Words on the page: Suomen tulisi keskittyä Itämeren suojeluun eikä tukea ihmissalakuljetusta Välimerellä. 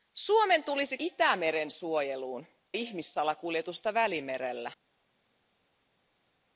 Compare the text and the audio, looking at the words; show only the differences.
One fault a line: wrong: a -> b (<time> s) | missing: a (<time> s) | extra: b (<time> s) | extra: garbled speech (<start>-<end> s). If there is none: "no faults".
missing: keskittyä (1.0 s)
missing: eikä tukea (2.5 s)